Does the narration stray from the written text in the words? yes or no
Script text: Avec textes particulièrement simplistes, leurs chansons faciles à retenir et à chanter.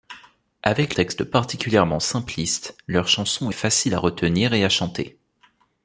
no